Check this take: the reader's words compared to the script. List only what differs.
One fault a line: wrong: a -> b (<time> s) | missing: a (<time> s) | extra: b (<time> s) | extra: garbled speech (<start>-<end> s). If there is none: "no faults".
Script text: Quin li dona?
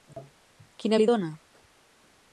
no faults